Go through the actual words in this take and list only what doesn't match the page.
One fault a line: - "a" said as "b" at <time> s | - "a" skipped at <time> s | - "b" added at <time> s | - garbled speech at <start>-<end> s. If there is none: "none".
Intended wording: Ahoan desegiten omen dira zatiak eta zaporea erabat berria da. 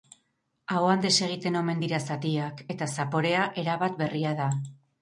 none